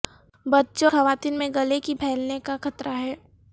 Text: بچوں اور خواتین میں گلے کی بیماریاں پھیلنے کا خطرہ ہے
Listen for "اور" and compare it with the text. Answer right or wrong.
wrong